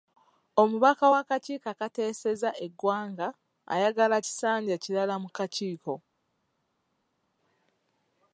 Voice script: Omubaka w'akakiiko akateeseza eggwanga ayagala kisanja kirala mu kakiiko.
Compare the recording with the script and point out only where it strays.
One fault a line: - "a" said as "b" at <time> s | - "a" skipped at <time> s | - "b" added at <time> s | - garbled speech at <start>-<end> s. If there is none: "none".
none